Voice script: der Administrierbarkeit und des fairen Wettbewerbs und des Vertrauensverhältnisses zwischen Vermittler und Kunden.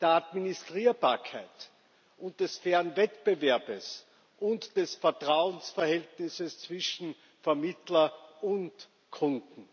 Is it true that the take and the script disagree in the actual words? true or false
false